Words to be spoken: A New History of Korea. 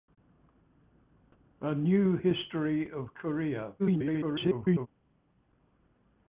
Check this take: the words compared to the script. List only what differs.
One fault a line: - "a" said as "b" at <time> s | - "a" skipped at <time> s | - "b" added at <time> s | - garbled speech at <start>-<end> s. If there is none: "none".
- garbled speech at 3.8-4.9 s